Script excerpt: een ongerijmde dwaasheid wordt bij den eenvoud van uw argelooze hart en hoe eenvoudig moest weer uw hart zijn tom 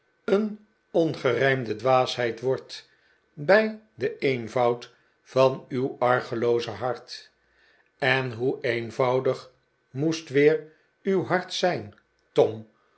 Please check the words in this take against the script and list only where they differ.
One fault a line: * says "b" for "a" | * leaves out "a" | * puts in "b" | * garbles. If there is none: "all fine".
all fine